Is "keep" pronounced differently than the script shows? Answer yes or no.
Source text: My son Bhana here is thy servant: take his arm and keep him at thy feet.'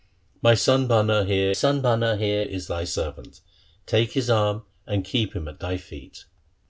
no